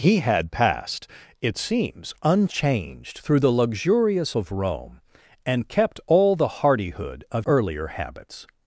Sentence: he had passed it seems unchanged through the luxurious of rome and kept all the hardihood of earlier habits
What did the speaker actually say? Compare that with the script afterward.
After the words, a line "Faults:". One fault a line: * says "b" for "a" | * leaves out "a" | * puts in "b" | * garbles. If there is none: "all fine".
he had passed it seems unchanged through the luxurious of rome and kept all the hardihood of earlier habits
Faults:
all fine